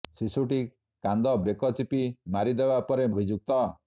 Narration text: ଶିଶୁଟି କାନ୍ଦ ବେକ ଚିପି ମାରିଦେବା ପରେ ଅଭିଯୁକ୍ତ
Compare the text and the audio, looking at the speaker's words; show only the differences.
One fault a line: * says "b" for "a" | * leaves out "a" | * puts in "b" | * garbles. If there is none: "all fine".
all fine